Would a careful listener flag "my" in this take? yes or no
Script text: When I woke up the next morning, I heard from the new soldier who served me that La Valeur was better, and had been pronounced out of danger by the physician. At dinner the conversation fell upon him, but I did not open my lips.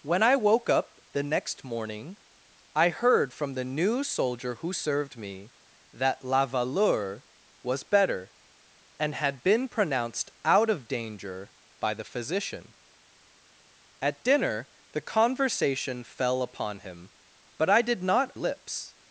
yes